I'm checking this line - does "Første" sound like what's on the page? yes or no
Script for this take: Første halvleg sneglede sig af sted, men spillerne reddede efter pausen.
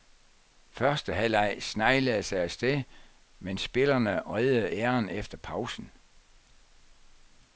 yes